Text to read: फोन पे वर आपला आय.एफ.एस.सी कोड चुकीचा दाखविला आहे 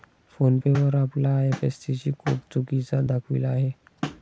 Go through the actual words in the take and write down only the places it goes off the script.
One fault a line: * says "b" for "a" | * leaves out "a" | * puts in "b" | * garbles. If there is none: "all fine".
all fine